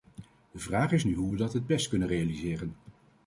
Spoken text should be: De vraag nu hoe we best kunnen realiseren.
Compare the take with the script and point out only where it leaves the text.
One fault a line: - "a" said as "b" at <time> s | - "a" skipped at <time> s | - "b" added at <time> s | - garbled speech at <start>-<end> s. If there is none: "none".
- "is" added at 0.9 s
- "dat het" added at 1.4 s